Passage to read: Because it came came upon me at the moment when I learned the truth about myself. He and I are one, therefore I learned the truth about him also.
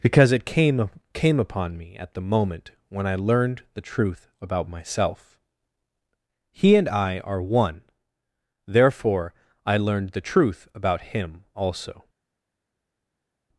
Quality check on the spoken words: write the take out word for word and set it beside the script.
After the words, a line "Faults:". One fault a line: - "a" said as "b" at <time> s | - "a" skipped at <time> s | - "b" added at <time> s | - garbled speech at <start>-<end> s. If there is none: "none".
Because it came came upon me at the moment when I learned the truth about myself. He and I are one, therefore I learned the truth about him also.
Faults:
none